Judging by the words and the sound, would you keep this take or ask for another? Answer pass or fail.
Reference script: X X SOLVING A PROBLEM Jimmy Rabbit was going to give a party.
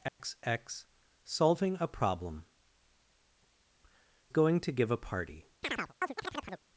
fail